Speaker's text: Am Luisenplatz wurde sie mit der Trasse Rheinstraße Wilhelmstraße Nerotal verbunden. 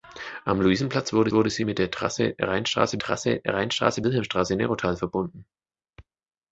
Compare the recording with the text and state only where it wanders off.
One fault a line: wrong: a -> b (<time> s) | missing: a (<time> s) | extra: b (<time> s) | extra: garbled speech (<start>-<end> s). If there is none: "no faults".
extra: wurde (1.3 s)
extra: Trasse Rheinstraße (3.0 s)